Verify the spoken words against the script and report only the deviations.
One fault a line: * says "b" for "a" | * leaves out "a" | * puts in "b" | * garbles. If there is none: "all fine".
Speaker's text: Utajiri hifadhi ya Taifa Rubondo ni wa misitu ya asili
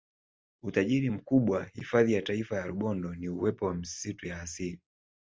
* puts in "mkubwa"
* puts in "ya"
* puts in "uwepo"